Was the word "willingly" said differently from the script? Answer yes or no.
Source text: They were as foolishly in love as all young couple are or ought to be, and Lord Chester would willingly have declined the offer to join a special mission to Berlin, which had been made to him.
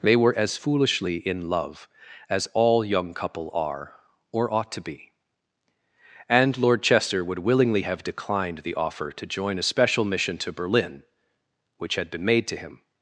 no